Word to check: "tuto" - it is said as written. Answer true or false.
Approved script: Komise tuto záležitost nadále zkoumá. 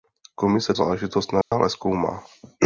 false